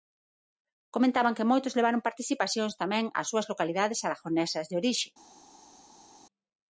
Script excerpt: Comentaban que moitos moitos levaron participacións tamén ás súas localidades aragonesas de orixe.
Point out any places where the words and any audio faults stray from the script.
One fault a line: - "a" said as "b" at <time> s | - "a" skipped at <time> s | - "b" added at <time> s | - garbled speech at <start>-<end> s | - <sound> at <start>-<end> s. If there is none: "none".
- "moitos" skipped at 1.8 s